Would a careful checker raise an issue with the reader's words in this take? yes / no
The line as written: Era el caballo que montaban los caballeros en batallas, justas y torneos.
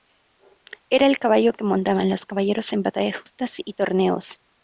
no